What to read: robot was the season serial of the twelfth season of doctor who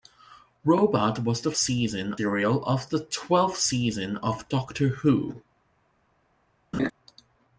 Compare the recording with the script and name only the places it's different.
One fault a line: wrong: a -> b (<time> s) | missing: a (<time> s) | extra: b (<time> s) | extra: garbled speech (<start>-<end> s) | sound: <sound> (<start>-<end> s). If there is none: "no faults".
sound: laugh (6.7-6.9 s)